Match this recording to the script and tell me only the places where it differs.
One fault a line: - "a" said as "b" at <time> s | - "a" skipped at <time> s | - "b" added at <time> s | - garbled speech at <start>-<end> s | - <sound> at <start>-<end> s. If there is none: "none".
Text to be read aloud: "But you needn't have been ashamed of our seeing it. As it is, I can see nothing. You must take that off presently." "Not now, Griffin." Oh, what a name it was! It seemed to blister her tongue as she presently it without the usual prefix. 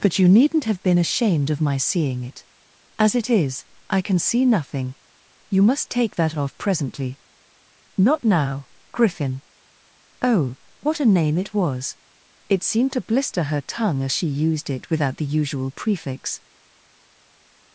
- "our" said as "my" at 1.6 s
- "presently" said as "used" at 14.4 s